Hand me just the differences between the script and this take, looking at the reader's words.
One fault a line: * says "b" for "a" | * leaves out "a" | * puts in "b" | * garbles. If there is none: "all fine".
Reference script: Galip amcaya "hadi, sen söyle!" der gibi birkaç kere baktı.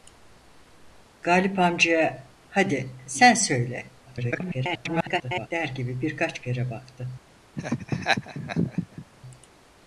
* garbles